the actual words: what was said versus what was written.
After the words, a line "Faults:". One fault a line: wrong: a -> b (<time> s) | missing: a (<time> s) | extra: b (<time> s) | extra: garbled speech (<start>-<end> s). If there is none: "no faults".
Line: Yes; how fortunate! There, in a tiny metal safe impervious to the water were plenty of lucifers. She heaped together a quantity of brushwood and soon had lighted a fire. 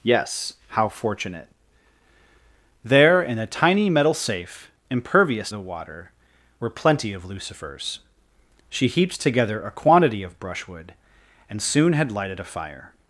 Yes; how fortunate! There, in a tiny metal safe impervious the water were plenty of lucifers. She heaped together a quantity of brushwood and soon had lighted a fire.
Faults:
missing: to (5.5 s)